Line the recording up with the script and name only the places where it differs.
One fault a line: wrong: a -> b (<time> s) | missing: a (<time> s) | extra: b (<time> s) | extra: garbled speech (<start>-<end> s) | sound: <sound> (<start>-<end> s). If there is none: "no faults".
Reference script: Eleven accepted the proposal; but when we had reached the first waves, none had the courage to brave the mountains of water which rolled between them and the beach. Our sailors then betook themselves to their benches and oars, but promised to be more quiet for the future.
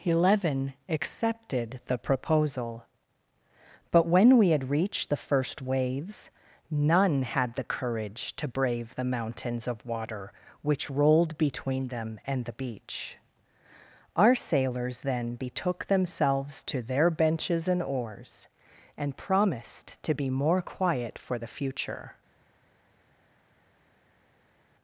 wrong: but -> and (19.0 s)